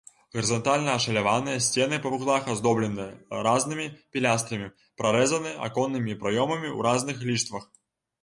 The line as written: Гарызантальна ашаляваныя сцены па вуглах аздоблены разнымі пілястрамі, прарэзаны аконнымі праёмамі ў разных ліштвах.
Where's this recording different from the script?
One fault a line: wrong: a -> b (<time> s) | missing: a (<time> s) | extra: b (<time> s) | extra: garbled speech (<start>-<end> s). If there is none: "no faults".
no faults